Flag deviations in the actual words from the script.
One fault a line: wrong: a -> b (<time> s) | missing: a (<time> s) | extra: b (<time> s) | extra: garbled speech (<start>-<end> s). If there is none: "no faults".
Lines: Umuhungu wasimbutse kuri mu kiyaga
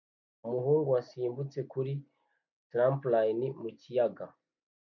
extra: trampoline (2.7 s)